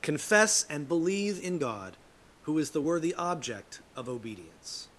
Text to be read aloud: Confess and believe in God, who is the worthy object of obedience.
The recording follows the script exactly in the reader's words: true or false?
true